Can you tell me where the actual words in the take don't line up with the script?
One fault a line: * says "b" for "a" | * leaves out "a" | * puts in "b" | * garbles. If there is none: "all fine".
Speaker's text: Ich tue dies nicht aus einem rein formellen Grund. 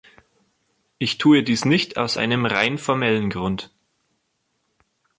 all fine